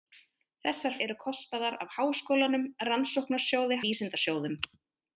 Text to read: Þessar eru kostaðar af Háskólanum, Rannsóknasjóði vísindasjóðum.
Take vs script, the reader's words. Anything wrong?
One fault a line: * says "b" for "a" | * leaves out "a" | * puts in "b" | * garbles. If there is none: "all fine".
all fine